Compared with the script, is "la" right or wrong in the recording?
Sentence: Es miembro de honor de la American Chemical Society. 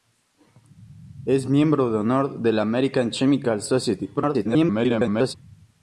right